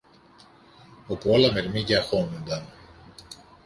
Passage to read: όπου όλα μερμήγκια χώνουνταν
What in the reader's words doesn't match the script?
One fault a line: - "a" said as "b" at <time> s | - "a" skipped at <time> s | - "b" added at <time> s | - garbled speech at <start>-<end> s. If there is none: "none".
none